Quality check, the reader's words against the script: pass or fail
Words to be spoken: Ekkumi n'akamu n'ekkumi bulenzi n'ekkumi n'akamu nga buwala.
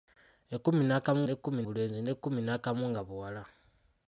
pass